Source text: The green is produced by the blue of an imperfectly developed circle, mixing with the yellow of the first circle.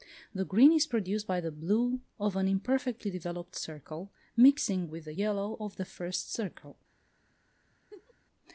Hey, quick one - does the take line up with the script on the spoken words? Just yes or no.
yes